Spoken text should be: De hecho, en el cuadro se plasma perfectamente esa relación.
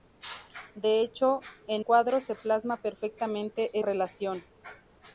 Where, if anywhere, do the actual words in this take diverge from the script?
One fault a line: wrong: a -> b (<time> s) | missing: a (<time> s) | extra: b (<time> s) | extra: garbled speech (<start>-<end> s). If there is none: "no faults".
missing: el (1.9 s)
missing: esa (3.8 s)